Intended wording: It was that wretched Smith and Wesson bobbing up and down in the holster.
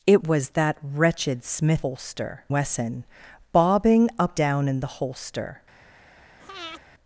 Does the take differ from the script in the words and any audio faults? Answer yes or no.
yes